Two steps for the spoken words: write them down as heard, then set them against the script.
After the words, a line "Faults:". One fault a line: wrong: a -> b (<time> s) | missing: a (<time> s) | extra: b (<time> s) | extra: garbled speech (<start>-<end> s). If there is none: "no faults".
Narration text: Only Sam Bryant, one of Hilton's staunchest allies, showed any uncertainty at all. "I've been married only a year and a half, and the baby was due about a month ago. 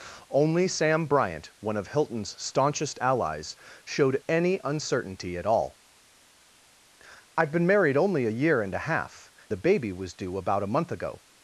Only Sam Bryant, one of Hilton's staunchest allies, showed any uncertainty at all. "I've been married only a year and a half, the baby was due about a month ago.
Faults:
missing: and (9.3 s)